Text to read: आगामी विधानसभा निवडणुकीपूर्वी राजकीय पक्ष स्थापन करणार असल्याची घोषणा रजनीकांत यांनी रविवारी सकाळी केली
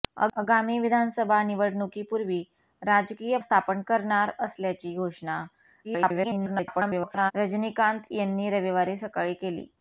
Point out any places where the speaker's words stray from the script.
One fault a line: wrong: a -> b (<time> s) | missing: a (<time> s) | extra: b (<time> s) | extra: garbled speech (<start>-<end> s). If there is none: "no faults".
missing: पक्ष (3.4 s)
extra: garbled speech (5.8-7.3 s)